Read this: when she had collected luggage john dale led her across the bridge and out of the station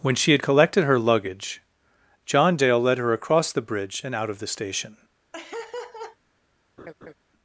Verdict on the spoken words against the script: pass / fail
fail